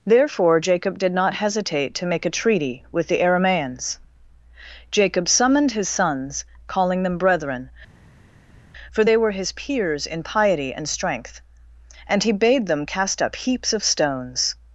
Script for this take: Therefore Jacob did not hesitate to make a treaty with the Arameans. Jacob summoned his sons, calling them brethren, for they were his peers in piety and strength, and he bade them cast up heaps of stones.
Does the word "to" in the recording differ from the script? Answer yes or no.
no